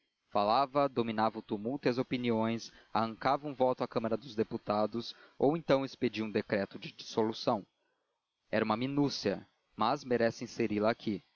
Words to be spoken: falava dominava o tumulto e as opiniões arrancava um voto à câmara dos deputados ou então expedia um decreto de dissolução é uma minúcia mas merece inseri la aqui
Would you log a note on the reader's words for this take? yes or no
no